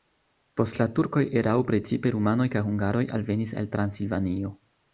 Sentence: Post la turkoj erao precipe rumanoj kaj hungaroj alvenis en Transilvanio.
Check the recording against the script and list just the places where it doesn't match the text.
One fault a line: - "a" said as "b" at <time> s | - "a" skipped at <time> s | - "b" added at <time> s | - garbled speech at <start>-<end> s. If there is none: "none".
- "en" said as "el" at 3.6 s